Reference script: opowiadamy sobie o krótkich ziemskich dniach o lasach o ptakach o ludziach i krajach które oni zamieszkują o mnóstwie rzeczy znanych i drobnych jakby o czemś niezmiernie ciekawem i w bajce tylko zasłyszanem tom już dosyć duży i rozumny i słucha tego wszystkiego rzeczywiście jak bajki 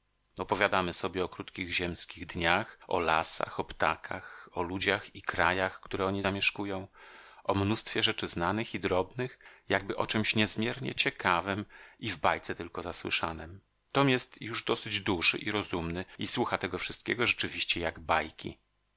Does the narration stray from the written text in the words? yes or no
yes